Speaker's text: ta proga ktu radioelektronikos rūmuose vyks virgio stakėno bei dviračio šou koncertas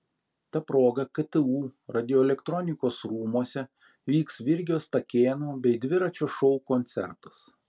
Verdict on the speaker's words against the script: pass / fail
pass